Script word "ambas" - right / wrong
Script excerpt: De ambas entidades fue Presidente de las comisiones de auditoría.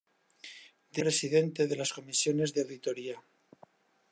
wrong